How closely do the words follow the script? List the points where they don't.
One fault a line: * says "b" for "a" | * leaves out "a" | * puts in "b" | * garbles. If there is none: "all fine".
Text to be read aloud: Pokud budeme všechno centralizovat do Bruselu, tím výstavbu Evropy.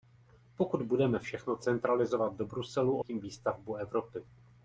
all fine